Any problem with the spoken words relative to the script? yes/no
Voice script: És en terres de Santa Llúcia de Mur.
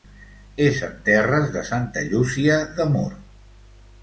no